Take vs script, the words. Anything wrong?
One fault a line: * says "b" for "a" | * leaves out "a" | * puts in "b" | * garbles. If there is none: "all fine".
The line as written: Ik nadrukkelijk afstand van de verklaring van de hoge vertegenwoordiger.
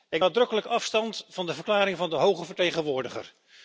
all fine